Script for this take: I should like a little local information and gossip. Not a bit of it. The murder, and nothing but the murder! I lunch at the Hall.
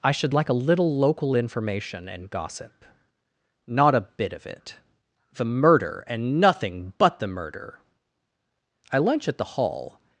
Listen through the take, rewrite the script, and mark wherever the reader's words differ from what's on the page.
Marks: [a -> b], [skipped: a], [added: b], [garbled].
I should like a little local information and gossip. Not a bit of it. The murder, and nothing but the murder! I lunch at the Hall.